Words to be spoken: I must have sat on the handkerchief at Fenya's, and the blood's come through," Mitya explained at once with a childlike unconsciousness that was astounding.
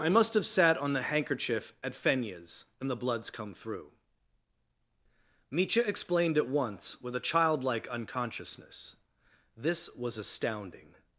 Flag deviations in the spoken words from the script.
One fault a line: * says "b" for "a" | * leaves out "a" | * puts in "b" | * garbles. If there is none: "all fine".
* says "this" for "that"